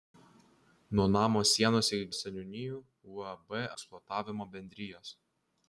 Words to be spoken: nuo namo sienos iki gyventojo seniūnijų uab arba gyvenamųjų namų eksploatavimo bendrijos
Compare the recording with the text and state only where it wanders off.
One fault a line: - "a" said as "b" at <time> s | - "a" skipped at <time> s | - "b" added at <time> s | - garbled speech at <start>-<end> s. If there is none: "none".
- "gyventojo" skipped at 2.1 s
- "arba gyvenamųjų namų" skipped at 3.6 s